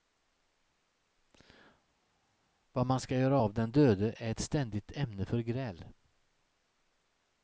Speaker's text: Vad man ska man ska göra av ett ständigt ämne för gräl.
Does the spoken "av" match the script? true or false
false